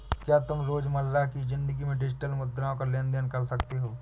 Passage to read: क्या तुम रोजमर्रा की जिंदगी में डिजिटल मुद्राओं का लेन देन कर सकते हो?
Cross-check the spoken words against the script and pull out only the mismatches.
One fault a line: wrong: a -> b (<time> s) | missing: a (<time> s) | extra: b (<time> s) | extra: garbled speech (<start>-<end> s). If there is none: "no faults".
no faults